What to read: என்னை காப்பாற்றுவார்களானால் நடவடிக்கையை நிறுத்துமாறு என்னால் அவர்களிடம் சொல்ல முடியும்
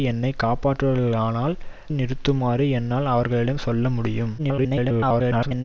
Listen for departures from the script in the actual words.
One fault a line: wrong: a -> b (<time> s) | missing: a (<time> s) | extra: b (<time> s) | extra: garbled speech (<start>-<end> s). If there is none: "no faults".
missing: நடவடிக்கையை (1.6 s)
extra: garbled speech (4.4-5.6 s)